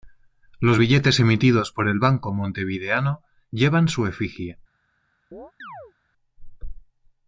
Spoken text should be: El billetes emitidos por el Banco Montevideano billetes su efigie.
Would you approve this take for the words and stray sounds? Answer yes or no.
no